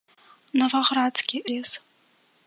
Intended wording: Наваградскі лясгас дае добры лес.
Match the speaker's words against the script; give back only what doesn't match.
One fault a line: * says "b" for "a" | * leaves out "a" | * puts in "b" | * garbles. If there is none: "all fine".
* leaves out "лясгас дае добры"